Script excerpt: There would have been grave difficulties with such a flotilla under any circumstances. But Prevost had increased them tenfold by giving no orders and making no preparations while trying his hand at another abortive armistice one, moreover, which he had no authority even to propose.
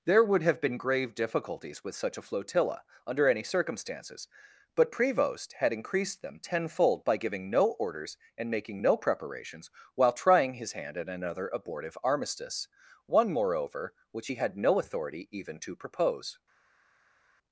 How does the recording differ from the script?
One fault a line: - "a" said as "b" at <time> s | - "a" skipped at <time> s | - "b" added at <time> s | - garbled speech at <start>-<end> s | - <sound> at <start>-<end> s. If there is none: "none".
none